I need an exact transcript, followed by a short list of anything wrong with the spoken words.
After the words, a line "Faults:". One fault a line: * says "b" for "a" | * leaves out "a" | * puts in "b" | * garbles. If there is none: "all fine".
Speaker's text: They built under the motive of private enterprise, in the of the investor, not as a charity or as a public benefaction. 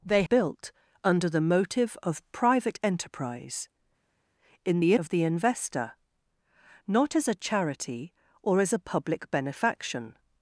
They built under the motive of private enterprise, in the of the investor, not as a charity or as a public benefaction.
Faults:
all fine